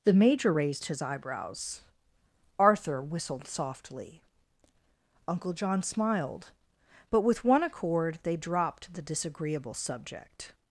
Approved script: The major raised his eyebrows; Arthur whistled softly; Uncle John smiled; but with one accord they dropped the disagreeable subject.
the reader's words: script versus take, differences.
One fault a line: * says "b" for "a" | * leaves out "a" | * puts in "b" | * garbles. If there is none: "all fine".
all fine